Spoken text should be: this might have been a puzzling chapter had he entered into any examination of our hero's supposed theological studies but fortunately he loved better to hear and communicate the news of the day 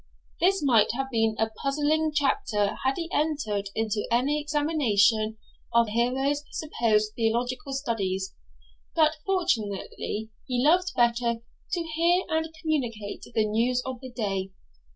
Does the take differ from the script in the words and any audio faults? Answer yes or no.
yes